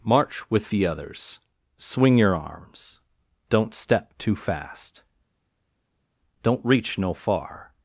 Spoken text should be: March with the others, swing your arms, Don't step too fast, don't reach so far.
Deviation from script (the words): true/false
true